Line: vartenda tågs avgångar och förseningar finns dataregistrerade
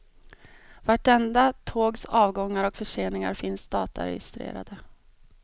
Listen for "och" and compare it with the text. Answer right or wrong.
right